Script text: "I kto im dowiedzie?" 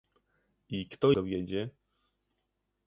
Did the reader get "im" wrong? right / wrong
wrong